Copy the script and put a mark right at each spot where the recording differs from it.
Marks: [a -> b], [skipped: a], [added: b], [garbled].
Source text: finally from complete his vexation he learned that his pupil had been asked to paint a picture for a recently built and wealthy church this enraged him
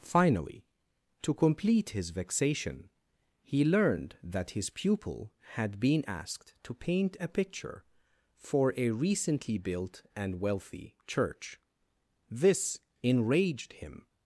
finally [from -> to] complete his vexation he learned that his pupil had been asked to paint a picture for a recently built and wealthy church this enraged him